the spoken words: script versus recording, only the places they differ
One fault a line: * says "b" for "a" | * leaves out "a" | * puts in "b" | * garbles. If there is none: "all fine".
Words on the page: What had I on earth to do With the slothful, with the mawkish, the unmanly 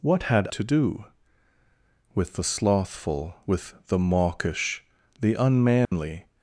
* leaves out "I on earth"